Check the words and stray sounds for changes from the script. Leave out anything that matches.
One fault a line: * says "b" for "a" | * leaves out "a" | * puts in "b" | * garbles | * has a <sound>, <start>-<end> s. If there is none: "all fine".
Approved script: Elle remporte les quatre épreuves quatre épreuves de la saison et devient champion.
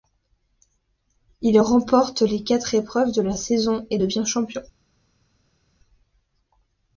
* says "Il" for "Elle"
* leaves out "quatre épreuves"